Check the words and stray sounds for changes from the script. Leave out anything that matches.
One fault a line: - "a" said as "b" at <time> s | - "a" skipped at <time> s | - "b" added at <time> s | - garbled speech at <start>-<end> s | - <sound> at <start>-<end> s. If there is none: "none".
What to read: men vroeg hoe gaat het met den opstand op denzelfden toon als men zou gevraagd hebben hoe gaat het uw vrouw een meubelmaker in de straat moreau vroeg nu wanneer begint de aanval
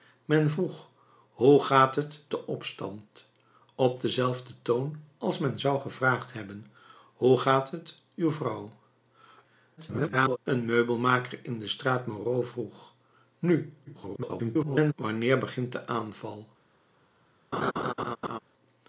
- "met" skipped at 2.2 s
- garbled speech at 9.8-10.4 s
- garbled speech at 13.8-14.9 s
- laugh at 17.5-18.4 s